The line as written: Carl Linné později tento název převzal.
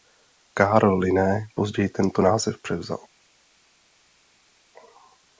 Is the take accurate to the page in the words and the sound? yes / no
yes